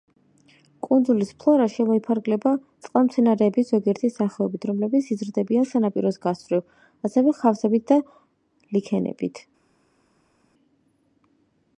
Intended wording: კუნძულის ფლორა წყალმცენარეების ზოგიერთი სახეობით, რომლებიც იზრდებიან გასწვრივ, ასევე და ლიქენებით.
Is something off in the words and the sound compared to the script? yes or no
yes